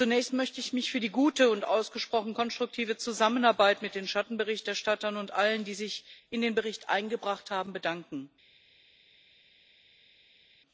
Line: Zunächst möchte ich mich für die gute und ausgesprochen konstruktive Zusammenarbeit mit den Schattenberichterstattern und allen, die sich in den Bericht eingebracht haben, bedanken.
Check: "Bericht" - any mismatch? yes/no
no